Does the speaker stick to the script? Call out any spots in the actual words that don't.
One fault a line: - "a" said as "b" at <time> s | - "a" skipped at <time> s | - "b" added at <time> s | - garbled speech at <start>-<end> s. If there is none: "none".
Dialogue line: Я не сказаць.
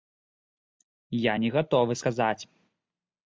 - "гатовы" added at 1.6 s